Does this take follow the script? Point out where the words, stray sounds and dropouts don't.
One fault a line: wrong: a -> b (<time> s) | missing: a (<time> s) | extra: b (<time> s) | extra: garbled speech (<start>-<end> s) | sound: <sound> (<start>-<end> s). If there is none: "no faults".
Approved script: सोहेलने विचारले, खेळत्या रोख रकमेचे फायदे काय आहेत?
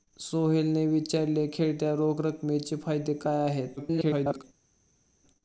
extra: garbled speech (3.8-4.4 s)